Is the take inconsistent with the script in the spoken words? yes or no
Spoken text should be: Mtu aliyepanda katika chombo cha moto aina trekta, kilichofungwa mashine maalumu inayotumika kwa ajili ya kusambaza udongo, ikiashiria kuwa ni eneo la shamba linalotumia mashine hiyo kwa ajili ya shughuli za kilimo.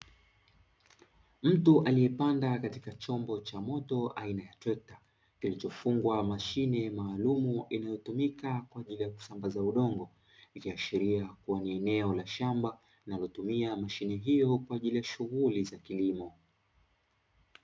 yes